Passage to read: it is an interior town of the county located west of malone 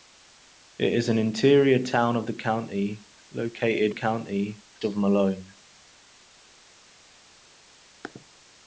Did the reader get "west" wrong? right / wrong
wrong